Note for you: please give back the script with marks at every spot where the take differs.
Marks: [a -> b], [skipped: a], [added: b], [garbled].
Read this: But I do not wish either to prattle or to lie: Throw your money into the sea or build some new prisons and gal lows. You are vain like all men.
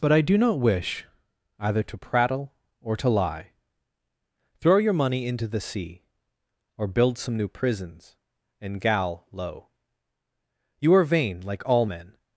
But I do not wish either to prattle or to lie: Throw your money into the sea or build some new prisons and gal [lows. -> low] You are vain like all men.